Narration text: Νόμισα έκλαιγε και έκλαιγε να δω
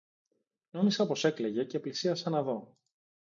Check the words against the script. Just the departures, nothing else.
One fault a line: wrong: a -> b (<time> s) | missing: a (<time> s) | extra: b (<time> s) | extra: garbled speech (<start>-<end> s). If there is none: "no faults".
extra: πως (1.1 s)
wrong: έκλαιγε -> πλησίασα (1.8 s)